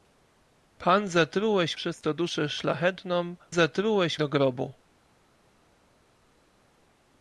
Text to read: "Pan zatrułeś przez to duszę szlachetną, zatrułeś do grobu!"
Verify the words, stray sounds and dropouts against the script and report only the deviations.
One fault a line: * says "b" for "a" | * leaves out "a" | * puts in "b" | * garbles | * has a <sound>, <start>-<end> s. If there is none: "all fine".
all fine